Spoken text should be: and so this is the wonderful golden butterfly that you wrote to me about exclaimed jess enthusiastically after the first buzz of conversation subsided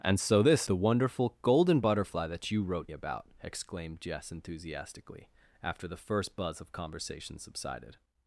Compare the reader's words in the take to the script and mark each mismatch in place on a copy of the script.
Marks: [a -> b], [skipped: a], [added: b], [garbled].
and so this [skipped: is] the wonderful golden butterfly that you wrote [skipped: to me] about exclaimed jess enthusiastically after the first buzz of conversation subsided